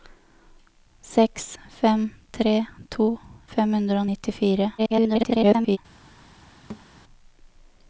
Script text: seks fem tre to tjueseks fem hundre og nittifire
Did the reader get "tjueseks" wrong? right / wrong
wrong